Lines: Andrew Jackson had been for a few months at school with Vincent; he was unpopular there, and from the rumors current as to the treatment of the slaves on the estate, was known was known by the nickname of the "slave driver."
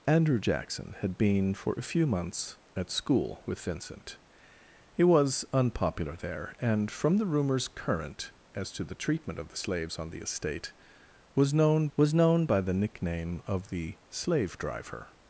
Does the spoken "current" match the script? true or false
true